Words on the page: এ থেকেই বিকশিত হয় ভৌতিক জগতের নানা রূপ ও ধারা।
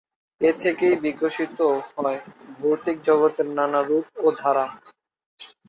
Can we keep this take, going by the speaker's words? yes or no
yes